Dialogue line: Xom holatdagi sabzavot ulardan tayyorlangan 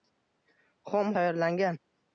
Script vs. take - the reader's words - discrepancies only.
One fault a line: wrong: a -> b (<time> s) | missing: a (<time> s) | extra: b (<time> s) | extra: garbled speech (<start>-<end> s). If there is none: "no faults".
missing: holatdagi sabzavot ulardan (1.1 s)